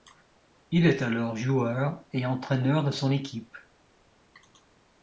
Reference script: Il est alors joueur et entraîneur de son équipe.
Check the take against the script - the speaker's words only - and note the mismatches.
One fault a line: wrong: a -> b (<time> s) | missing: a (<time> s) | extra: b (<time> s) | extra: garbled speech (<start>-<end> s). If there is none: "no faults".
no faults